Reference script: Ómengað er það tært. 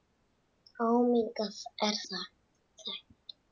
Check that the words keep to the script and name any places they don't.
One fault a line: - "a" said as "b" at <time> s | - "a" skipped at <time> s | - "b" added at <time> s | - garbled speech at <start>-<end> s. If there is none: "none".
- "það" skipped at 2.0 s